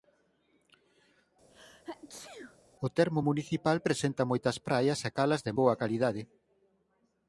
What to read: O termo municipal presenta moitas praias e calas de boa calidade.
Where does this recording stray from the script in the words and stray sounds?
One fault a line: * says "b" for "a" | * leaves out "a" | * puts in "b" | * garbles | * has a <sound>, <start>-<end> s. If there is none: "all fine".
* has a sneeze, 1.5-2.6 s